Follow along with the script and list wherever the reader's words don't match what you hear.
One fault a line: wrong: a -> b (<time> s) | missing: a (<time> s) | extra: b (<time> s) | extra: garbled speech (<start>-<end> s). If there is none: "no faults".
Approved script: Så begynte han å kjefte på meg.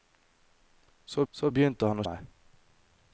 extra: så (1.3 s)
missing: kjefte på (2.1 s)